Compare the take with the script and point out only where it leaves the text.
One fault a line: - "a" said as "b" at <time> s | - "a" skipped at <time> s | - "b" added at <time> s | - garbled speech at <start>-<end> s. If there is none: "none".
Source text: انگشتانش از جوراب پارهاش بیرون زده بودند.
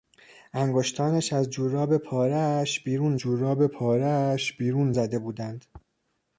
- "جوراب پارهاش بیرون" added at 3.2 s